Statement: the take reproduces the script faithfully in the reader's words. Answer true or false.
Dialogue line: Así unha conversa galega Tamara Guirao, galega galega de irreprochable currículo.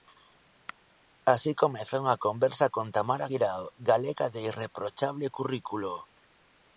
false